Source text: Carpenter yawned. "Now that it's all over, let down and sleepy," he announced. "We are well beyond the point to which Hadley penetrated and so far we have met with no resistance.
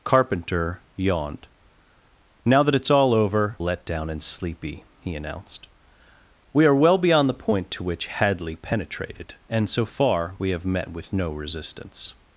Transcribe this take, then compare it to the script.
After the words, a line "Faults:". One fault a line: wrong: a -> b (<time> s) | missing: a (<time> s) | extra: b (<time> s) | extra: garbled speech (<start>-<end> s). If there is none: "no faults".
Carpenter yawned. "Now that it's all over, let down and sleepy," he announced. "We are well beyond the point to which Hadley penetrated and so far we have met with no resistance.
Faults:
no faults